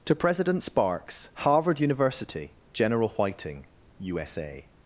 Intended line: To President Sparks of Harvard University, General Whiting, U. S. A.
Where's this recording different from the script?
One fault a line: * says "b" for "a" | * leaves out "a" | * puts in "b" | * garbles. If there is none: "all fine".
* leaves out "of"